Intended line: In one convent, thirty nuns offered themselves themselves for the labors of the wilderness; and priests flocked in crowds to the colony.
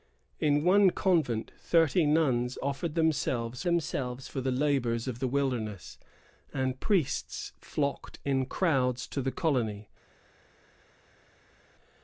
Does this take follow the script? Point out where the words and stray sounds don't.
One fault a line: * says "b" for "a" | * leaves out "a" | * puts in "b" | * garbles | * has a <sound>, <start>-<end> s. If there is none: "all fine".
all fine